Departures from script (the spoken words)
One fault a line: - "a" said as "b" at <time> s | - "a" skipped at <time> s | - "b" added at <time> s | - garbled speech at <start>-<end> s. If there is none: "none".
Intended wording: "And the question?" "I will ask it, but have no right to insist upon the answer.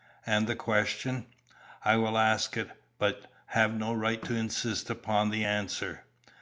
none